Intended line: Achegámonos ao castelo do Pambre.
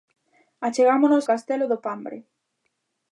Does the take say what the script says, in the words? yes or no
no